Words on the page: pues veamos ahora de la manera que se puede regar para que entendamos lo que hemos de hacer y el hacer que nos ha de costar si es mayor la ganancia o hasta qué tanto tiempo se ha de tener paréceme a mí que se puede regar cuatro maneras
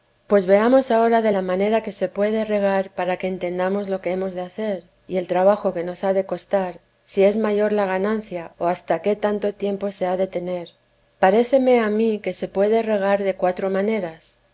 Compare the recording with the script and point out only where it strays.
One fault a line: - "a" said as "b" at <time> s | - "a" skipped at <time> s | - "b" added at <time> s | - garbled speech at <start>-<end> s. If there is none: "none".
- "hacer" said as "trabajo" at 5.3 s
- "de" added at 13.2 s